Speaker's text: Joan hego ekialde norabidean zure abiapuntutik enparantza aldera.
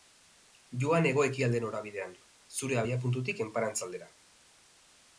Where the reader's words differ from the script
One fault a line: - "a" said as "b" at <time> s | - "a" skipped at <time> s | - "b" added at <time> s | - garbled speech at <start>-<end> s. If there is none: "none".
none